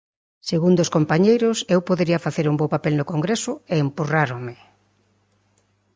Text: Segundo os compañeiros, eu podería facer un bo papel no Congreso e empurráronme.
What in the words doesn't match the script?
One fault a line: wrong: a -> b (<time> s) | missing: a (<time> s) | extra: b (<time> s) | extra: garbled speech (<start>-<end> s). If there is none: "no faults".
no faults